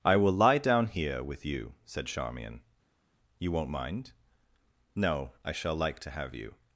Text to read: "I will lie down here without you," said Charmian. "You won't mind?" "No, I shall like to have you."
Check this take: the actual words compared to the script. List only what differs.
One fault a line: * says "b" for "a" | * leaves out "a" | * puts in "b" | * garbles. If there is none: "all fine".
* says "with" for "without"